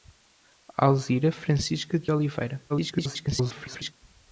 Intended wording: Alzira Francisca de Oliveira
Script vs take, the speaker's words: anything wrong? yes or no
yes